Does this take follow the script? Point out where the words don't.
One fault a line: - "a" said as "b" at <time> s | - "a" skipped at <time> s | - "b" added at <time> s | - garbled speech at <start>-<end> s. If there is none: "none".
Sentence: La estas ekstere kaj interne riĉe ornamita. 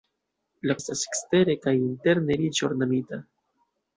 none